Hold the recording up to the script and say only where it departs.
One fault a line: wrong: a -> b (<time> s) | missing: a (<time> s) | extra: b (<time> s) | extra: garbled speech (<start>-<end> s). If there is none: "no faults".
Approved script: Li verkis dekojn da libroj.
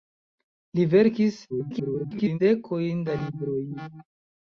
extra: garbled speech (1.5-2.4 s)